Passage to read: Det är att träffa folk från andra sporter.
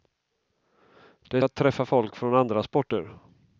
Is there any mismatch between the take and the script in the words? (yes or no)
no